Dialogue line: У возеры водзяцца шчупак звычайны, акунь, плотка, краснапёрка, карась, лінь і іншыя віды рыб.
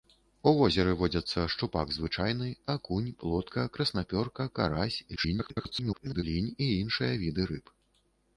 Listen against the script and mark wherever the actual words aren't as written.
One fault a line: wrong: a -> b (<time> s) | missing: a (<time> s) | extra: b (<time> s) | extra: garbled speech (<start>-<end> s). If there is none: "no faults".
extra: garbled speech (5.2-6.2 s)